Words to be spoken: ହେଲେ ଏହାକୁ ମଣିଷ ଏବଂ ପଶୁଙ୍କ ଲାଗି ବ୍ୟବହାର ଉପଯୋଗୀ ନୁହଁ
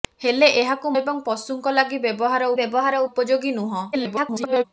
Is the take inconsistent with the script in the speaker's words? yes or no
yes